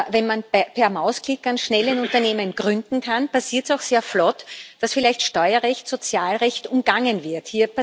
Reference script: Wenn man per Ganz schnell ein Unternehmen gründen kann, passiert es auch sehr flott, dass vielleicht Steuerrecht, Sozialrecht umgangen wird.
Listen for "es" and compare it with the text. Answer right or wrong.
right